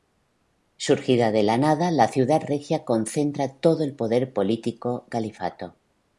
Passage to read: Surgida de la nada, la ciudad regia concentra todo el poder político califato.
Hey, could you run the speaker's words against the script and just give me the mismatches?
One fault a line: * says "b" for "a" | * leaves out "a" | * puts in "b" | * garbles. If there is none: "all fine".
all fine